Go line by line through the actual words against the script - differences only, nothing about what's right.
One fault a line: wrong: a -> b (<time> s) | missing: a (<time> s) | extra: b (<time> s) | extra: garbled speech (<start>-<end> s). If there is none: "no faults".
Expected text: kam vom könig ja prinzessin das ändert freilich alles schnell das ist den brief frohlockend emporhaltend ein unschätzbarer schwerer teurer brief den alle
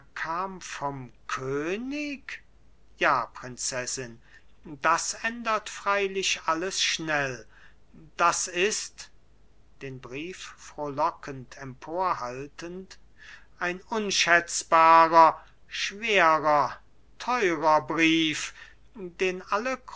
no faults